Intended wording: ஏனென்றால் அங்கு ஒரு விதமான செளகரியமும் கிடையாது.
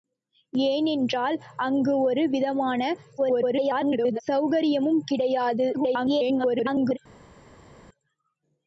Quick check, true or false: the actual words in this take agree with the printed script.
false